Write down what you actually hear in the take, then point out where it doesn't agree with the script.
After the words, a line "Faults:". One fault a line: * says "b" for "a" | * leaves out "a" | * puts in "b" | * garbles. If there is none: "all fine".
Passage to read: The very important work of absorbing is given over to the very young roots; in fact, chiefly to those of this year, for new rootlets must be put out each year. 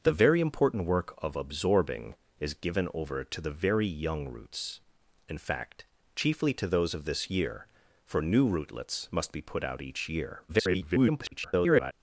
The very important work of absorbing is given over to the very young roots; in fact, chiefly to those of this year, for new rootlets must be put out each year. [garbled]
Faults:
* garbles